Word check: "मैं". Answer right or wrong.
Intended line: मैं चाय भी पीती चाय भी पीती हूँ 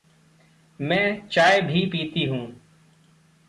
right